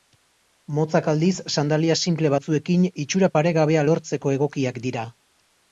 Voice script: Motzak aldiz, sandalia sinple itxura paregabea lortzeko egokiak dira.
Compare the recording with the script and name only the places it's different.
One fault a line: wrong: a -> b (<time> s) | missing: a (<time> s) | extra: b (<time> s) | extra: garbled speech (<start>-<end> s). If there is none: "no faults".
extra: batzuekin (2.3 s)